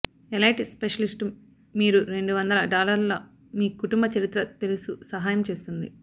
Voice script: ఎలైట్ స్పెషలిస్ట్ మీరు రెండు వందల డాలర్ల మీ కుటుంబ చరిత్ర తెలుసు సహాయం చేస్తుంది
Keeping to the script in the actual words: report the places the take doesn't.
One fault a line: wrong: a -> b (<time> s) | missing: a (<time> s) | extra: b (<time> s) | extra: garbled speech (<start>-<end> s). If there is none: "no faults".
no faults